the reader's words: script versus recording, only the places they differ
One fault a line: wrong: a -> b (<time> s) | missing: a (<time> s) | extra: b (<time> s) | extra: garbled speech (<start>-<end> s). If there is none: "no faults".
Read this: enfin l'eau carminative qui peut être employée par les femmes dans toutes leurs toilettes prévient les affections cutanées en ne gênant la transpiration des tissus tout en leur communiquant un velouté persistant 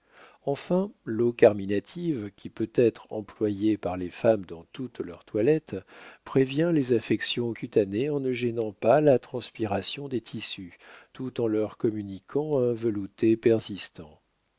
extra: pas (8.7 s)